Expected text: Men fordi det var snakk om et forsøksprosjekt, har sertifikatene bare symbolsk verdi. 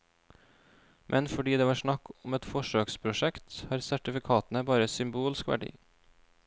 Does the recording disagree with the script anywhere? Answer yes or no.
no